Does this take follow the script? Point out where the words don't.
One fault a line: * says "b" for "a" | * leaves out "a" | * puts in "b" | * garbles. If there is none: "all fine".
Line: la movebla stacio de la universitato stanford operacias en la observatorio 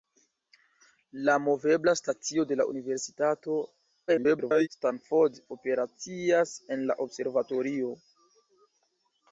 * garbles